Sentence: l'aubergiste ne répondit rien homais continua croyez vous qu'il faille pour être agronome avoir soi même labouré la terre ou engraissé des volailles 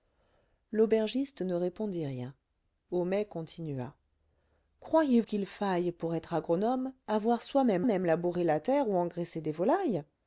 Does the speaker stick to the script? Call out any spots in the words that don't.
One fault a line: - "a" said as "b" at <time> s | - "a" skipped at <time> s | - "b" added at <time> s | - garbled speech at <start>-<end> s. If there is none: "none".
- "vous" skipped at 5.2 s
- "même" added at 7.9 s